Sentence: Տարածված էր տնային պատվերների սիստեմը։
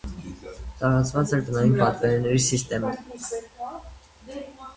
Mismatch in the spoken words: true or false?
false